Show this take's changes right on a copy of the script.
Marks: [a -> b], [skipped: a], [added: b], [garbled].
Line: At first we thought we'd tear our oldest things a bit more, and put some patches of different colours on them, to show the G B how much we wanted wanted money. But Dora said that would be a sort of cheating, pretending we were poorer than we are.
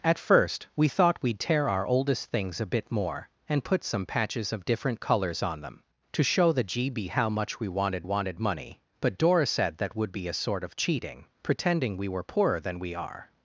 At first we thought we'd tear our oldest things a bit more, and put some patches of different colours on them, to show the G B how much we wanted wanted money. But Dora said that would be a sort of cheating, pretending we were poorer than we are.